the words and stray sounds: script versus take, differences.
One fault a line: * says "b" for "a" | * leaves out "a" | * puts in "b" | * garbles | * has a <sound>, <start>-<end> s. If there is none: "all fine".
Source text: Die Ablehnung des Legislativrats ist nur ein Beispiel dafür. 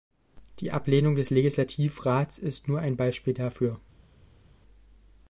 all fine